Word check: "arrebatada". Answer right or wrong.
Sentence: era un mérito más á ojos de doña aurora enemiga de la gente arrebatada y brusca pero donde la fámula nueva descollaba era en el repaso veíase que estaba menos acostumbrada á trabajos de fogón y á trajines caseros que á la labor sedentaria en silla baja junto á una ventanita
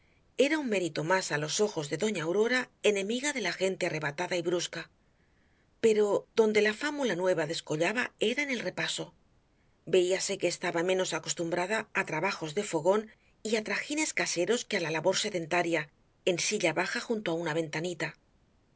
right